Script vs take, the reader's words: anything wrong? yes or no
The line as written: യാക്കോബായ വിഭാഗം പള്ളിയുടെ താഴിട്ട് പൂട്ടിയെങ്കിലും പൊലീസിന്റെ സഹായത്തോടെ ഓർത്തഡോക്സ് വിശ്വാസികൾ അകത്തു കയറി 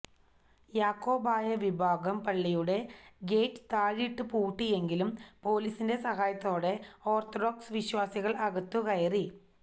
yes